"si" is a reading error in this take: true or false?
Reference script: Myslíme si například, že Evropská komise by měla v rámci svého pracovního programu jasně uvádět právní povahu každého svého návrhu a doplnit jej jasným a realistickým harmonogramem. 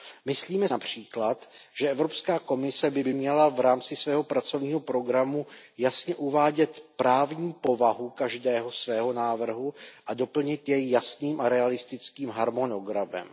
true